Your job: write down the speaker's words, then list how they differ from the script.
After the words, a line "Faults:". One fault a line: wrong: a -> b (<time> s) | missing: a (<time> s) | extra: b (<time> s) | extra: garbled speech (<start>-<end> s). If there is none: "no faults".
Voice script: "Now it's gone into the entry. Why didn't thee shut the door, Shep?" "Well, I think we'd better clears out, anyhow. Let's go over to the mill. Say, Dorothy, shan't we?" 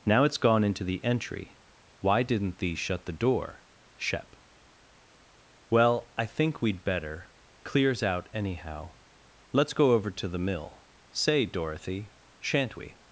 "Now it's gone into the entry. Why didn't thee shut the door, Shep?" "Well, I think we'd better clears out, anyhow. Let's go over to the mill. Say, Dorothy, shan't we?"
Faults:
no faults